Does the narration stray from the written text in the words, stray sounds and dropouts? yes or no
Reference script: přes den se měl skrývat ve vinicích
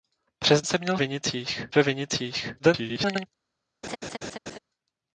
yes